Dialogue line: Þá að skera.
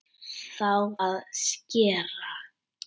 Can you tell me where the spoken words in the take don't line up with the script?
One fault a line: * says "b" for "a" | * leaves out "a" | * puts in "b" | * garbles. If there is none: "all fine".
all fine